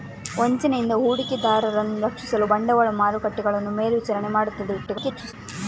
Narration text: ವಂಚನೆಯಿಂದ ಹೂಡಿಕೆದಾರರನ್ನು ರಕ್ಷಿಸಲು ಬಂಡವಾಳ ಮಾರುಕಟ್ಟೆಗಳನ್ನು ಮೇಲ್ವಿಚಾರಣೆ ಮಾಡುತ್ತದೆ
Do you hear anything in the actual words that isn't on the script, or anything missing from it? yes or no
yes